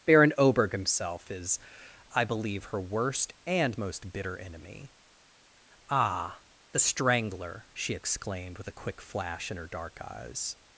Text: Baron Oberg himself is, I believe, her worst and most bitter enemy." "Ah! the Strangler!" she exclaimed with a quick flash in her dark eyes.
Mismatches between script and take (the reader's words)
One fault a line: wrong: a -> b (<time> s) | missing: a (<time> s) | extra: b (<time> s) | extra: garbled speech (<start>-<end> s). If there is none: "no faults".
no faults